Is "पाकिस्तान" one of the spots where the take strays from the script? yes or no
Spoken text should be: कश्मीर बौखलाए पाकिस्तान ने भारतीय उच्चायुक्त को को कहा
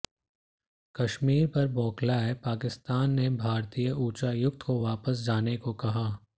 no